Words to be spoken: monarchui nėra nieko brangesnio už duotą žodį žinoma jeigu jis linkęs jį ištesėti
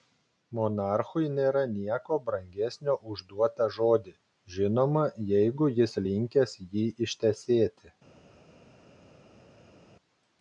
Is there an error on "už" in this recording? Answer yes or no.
no